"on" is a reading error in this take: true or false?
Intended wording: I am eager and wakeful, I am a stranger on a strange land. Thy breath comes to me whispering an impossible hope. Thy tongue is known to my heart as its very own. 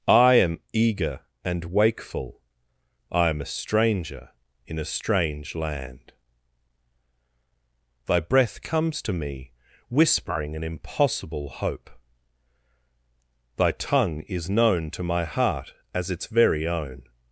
true